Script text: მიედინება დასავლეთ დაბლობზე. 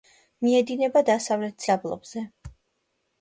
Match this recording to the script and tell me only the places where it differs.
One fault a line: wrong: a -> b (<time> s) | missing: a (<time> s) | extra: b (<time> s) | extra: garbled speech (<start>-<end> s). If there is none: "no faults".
no faults